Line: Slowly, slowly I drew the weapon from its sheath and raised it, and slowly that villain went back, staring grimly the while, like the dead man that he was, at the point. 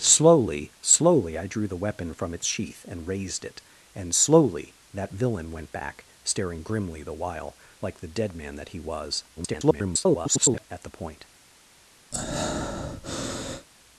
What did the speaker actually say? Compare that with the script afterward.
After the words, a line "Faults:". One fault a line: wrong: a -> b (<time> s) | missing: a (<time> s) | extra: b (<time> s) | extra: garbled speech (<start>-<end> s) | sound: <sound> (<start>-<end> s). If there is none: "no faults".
Slowly, slowly I drew the weapon from its sheath and raised it, and slowly that villain went back, staring grimly the while, like the dead man that he was, [garbled] at the point.
Faults:
extra: garbled speech (9.4-10.6 s)
sound: breath (12.1-13.7 s)